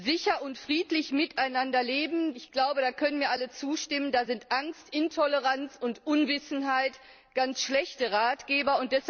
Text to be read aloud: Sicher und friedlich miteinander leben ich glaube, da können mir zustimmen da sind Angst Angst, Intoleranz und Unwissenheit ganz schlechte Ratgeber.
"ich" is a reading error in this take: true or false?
false